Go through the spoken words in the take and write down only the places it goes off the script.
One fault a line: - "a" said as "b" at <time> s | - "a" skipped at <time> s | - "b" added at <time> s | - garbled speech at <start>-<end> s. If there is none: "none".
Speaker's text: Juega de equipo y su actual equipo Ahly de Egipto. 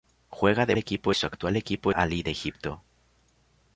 none